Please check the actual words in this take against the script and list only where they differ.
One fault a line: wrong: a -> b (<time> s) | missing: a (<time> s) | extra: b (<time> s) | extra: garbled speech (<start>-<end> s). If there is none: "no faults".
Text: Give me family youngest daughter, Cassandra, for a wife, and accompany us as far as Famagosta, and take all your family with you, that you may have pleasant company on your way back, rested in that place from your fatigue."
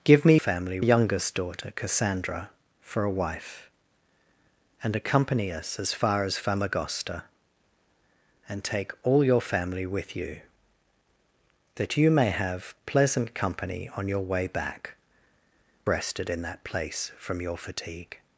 no faults